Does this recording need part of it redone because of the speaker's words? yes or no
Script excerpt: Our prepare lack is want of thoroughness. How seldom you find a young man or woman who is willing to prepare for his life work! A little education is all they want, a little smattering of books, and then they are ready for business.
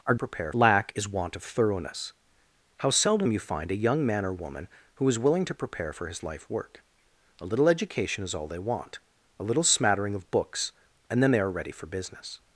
no